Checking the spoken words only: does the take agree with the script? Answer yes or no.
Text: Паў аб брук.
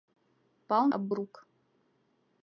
yes